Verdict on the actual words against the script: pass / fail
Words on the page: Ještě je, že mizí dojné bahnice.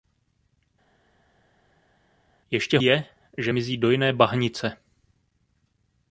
pass